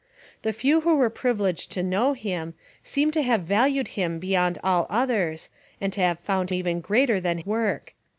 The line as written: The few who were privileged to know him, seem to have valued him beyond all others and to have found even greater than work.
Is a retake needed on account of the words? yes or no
no